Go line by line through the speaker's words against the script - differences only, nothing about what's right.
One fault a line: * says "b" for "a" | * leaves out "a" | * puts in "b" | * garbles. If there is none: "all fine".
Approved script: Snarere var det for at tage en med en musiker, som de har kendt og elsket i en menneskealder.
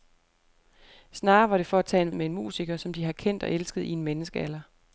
all fine